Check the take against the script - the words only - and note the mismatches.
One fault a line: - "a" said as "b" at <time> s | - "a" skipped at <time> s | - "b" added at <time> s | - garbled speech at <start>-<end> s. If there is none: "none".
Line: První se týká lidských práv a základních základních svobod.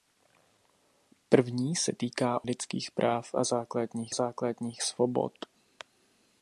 none